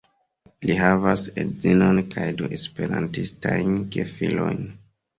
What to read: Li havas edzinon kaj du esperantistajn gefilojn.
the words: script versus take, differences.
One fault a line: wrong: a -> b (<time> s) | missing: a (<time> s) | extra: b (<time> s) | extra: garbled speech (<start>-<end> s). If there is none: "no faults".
no faults